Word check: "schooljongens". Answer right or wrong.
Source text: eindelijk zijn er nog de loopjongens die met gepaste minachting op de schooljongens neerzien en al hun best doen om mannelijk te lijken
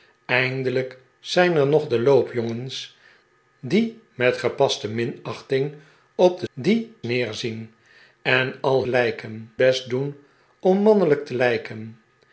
wrong